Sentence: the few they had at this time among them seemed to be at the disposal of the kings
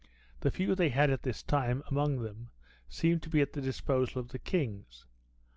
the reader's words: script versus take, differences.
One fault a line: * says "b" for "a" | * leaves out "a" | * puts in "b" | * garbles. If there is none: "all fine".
all fine